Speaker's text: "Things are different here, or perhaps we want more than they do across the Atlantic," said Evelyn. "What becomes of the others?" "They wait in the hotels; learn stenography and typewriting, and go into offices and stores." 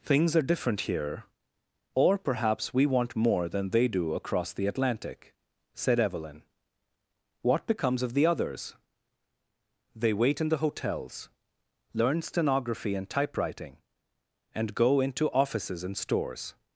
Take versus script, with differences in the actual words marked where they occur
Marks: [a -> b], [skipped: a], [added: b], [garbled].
"Things are different here, or perhaps we want more than they do across the Atlantic," said Evelyn. "What becomes of the others?" "They wait in the hotels; learn stenography and typewriting, and go into offices and stores."